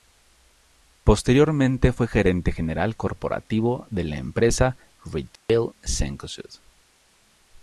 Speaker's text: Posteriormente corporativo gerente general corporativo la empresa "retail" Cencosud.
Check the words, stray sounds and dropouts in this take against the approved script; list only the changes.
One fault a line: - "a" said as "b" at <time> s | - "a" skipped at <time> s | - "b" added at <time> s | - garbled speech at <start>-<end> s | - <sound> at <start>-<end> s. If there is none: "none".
- "corporativo" said as "fue" at 1.9 s
- "de" added at 3.9 s
- dropout at 5.4-5.5 s